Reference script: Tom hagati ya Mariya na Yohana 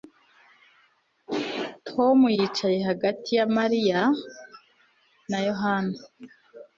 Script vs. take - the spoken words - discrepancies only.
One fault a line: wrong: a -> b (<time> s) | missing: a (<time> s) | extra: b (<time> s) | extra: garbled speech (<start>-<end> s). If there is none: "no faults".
extra: yicaye (2.4 s)